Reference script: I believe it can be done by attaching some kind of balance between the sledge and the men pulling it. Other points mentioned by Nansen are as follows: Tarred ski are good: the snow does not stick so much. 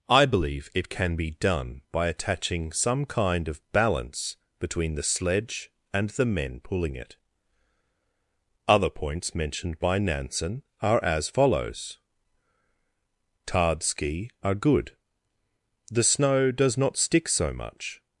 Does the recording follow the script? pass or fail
pass